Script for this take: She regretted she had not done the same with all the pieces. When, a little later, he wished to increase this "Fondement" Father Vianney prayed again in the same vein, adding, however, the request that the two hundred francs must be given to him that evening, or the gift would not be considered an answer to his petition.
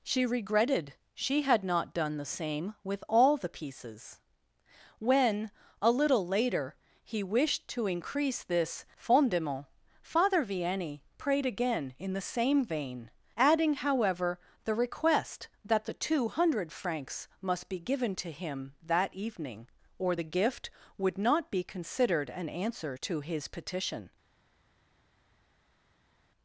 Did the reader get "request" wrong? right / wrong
right